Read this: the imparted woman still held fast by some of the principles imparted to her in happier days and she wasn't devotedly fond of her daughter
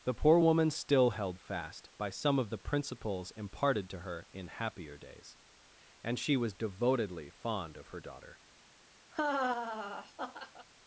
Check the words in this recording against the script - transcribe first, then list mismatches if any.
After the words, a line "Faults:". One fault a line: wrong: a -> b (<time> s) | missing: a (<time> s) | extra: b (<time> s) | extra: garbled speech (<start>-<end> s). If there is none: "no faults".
the poor woman still held fast by some of the principles imparted to her in happier days and she was devotedly fond of her daughter
Faults:
wrong: imparted -> poor (0.1 s)
wrong: wasn't -> was (6.4 s)